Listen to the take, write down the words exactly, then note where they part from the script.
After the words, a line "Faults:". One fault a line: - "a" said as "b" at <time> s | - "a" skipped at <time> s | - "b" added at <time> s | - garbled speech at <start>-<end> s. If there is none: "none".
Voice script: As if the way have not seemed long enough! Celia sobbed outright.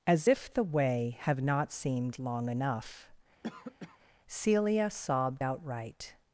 As if the way have not seemed long enough! Celia sobbed outright.
Faults:
none